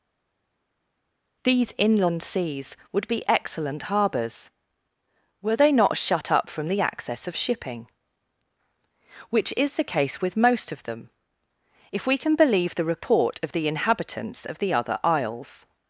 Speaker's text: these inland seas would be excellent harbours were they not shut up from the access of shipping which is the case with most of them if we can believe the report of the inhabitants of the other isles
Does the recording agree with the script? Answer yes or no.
yes